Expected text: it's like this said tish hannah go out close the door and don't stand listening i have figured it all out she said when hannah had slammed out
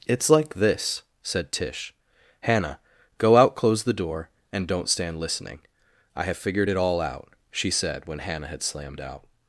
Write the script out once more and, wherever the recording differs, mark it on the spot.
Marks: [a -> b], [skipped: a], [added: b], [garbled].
it's like this said tish hannah go out close the door and don't stand listening i have figured it all out she said when hannah had slammed out